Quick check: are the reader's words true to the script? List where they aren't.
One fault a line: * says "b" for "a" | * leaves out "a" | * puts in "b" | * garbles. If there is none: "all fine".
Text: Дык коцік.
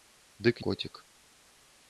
all fine